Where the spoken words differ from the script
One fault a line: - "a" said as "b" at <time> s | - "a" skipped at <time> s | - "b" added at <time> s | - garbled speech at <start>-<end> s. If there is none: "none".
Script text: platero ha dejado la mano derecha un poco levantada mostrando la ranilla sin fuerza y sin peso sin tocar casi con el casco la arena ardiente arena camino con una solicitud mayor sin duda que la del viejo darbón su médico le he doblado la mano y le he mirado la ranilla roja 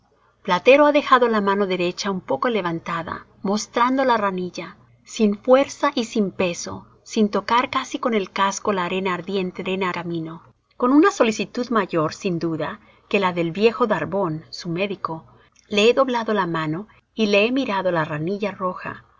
none